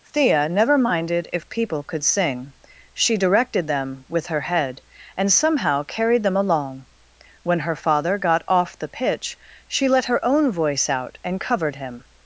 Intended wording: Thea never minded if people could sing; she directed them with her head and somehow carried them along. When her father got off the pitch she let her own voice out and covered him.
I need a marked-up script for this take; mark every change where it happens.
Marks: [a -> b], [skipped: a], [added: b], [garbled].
Thea never minded if people could sing; she directed them with her head and somehow carried them along. When her father got off the pitch she let her own voice out and covered him.